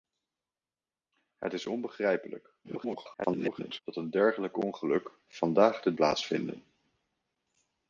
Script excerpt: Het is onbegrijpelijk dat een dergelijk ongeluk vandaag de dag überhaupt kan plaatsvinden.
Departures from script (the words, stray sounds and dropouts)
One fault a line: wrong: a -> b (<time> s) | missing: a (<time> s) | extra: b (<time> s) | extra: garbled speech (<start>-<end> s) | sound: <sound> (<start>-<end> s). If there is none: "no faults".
extra: garbled speech (2.6-3.8 s)
missing: dag überhaupt kan (5.9 s)